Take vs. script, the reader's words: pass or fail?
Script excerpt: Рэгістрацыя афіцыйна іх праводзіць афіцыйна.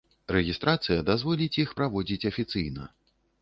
fail